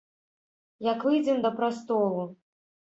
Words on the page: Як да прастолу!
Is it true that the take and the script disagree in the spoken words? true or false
true